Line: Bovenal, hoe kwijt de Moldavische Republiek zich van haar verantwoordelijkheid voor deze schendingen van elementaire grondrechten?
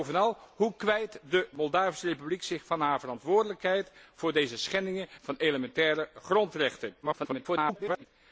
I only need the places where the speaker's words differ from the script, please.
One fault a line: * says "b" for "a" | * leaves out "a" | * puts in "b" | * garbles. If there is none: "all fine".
* garbles